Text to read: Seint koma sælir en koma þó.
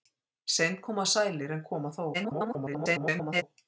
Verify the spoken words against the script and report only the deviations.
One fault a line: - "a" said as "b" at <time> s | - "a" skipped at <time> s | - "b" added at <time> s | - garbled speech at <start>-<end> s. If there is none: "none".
- garbled speech at 2.1-3.4 s